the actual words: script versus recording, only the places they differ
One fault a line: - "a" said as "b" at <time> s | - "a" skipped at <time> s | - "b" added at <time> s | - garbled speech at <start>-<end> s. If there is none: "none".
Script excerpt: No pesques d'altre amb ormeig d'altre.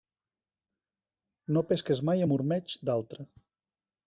- "d'altre" said as "mai" at 2.1 s